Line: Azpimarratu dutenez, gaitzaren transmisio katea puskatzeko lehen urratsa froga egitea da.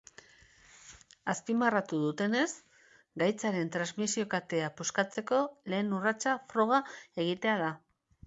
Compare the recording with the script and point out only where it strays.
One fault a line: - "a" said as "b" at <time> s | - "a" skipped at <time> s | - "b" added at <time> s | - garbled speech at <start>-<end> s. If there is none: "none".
none